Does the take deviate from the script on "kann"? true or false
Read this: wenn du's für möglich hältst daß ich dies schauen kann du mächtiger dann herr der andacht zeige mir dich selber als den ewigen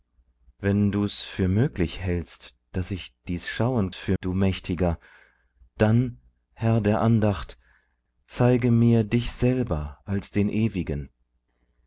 true